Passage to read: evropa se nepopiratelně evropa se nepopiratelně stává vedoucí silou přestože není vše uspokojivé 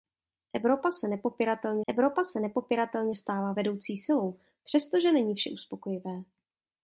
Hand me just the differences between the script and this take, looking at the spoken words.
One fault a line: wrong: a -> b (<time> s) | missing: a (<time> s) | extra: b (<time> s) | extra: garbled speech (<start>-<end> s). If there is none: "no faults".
no faults